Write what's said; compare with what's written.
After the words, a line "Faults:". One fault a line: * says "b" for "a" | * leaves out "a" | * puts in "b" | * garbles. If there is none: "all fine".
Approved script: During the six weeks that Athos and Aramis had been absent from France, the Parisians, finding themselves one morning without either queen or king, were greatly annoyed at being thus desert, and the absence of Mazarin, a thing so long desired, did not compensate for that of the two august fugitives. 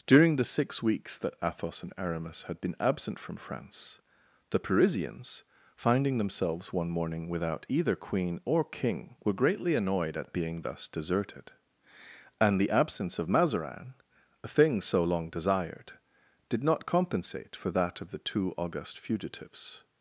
During the six weeks that Athos and Aramis had been absent from France, the Parisians, finding themselves one morning without either queen or king, were greatly annoyed at being thus deserted, and the absence of Mazarin, a thing so long desired, did not compensate for that of the two august fugitives.
Faults:
* says "deserted" for "desert"